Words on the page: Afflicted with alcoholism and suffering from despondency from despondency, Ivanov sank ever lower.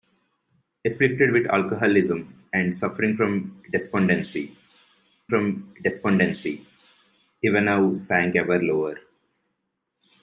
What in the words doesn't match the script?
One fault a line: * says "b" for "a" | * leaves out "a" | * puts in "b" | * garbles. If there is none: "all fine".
all fine